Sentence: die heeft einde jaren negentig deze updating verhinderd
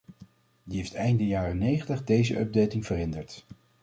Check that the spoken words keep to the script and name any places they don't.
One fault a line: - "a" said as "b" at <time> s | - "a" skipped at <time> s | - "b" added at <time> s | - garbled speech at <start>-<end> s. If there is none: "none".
none